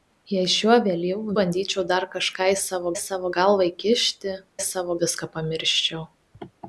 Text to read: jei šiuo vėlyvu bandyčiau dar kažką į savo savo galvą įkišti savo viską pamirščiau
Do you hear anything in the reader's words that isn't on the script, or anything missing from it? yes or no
no